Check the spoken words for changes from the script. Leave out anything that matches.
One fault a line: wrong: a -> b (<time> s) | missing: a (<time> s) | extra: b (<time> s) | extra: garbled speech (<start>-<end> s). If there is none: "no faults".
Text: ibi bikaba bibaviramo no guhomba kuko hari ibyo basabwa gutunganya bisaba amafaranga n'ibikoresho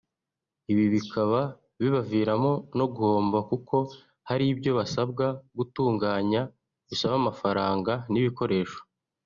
no faults